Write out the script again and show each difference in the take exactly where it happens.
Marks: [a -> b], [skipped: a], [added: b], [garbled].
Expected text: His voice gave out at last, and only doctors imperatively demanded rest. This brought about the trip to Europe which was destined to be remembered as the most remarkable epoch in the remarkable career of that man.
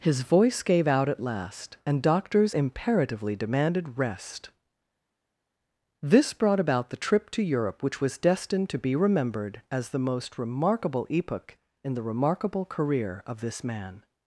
His voice gave out at last, and [skipped: only] doctors imperatively demanded rest. This brought about the trip to Europe which was destined to be remembered as the most remarkable epoch in the remarkable career of [that -> this] man.